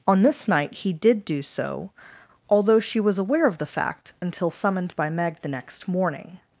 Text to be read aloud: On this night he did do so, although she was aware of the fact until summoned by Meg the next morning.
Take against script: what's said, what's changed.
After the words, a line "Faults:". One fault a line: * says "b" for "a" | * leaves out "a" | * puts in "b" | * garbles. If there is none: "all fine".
On this night he did do so, although she was aware of the fact until summoned by Meg the next morning.
Faults:
all fine